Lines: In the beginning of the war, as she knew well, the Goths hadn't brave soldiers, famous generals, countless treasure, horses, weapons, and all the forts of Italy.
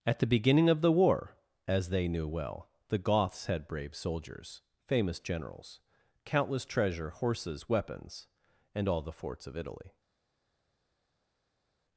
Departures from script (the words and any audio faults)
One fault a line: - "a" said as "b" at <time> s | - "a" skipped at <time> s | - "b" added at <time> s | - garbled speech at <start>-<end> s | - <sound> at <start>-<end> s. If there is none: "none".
- "In" said as "At" at 0.0 s
- "she" said as "they" at 1.9 s
- "hadn't" said as "had" at 3.5 s